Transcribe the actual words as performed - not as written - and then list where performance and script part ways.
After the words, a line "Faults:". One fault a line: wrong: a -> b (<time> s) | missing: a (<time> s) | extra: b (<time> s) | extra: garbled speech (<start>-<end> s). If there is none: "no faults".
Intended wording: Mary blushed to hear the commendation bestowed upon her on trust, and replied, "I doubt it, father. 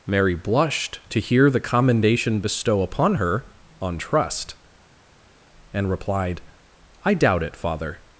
Mary blushed to hear the commendation bestow upon her on trust, and replied, "I doubt it, father.
Faults:
wrong: bestowed -> bestow (2.4 s)